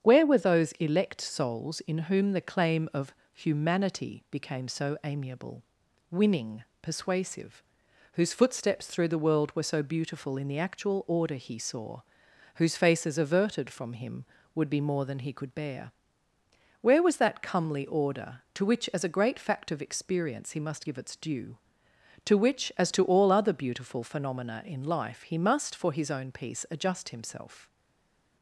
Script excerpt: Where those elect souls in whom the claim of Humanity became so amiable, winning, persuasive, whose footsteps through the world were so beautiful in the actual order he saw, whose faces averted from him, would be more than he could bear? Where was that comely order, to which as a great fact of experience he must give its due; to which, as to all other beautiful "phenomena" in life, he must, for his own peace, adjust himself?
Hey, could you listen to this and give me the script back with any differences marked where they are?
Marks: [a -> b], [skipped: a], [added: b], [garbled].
Where [added: were] those elect souls in whom the claim of Humanity became so amiable, winning, persuasive, whose footsteps through the world were so beautiful in the actual order he saw, whose faces averted from him, would be more than he could bear? Where was that comely order, to which as a great fact of experience he must give its due; to which, as to all other beautiful "phenomena" in life, he must, for his own peace, adjust himself?